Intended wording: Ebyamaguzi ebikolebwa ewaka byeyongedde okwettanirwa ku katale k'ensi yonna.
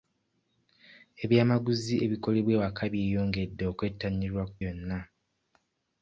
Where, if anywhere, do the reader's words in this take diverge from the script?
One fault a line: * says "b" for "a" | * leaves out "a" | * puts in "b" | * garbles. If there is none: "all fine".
* leaves out "katale k'ensi"